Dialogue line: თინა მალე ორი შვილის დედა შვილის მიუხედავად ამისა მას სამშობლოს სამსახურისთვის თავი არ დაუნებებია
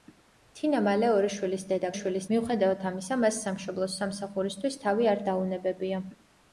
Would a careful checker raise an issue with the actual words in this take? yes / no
no